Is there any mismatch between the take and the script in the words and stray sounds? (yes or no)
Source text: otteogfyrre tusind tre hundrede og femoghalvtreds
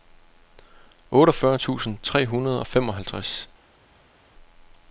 no